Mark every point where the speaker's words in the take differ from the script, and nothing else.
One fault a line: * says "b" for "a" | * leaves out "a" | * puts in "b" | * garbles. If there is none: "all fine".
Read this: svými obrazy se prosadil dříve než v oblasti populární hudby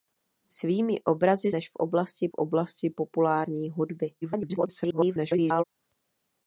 * leaves out "se prosadil dříve"
* puts in "oblasti"
* garbles